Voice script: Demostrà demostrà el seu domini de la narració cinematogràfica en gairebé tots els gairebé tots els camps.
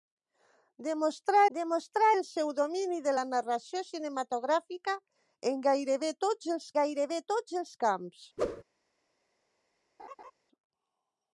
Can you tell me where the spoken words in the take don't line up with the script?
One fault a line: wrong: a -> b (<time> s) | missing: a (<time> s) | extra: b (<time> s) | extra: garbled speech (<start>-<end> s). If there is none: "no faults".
no faults